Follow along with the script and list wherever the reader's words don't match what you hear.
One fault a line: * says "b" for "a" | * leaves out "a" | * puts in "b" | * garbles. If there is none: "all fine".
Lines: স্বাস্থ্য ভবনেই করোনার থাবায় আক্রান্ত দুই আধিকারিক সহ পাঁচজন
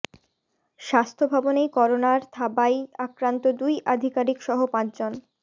all fine